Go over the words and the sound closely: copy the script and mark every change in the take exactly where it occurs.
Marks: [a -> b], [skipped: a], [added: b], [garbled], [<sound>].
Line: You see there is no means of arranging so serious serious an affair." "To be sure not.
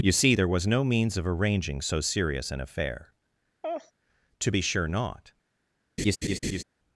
You see there [is -> was] no means of arranging so serious [skipped: serious] an affair." [laugh] "To be sure not. [laugh]